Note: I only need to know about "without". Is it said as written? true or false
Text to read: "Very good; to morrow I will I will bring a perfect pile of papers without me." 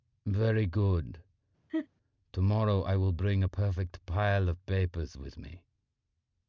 false